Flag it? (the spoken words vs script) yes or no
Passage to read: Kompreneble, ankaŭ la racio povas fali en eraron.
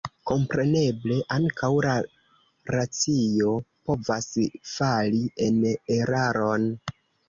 no